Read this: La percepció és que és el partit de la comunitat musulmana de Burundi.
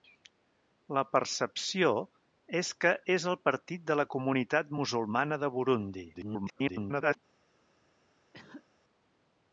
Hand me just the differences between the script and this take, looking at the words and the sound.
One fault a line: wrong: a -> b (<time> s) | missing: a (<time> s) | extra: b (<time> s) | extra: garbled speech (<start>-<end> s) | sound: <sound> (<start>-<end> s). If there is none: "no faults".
extra: garbled speech (6.1-7.2 s)
sound: cough (8.3-8.7 s)